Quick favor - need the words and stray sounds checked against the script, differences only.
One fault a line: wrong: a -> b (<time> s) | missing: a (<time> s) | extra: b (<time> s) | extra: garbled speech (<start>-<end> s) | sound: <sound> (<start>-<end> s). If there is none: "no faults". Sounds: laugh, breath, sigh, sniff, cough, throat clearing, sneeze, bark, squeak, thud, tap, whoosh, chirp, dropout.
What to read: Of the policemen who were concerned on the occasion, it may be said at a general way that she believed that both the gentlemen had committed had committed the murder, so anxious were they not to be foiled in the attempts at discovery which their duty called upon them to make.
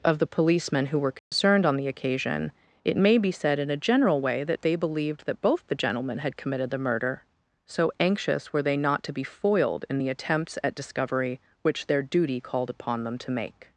sound: dropout (1.2-1.3 s)
wrong: at -> in (3.6 s)
wrong: she -> they (4.6 s)
missing: had committed (6.7 s)